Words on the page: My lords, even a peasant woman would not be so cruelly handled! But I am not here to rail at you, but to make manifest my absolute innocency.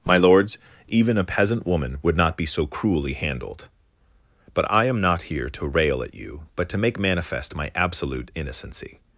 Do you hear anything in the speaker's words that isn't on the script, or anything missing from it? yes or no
no